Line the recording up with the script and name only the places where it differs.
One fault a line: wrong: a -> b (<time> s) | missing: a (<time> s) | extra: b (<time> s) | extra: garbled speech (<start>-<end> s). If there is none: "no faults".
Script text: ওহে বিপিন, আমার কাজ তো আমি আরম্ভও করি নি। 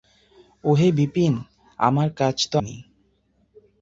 missing: আমি আরম্ভও করি (2.5 s)